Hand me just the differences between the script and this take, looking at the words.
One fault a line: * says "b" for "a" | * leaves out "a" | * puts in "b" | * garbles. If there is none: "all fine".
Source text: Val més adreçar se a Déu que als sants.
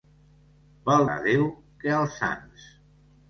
* leaves out "més adreçar se"